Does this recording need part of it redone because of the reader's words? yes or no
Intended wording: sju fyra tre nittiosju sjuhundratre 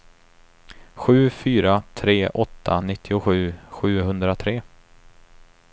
yes